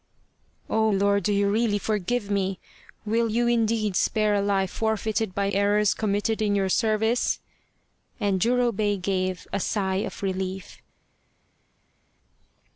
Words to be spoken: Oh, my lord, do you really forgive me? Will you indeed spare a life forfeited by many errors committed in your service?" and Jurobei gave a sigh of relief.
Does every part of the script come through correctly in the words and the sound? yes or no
no